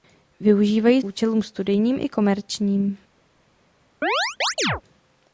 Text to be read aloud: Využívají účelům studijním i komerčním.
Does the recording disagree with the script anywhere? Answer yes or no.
no